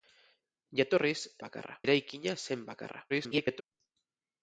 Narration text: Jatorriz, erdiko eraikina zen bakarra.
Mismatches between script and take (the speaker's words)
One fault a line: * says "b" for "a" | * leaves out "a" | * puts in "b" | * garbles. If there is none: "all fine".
* says "bakarra" for "erdiko"
* garbles